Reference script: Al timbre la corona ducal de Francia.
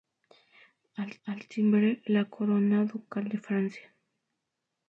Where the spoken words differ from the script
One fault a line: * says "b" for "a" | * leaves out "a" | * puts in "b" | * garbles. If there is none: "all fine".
* puts in "al"